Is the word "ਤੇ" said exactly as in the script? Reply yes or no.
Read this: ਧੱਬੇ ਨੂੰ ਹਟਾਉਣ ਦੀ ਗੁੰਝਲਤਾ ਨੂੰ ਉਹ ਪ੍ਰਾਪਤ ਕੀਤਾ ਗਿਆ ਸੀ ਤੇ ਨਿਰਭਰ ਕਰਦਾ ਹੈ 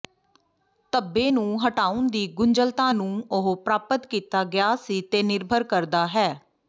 yes